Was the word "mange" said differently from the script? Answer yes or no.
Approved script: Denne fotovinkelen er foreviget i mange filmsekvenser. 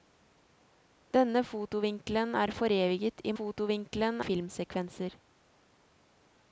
yes